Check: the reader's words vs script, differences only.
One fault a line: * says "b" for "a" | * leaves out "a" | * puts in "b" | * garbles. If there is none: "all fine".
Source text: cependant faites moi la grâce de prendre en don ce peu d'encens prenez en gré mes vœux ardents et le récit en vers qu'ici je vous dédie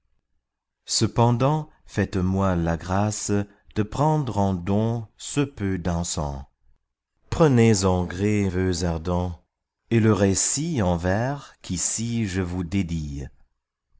* leaves out "mes"